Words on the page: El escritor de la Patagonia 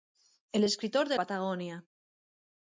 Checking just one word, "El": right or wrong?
right